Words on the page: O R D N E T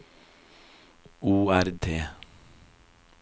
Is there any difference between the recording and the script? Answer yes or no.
yes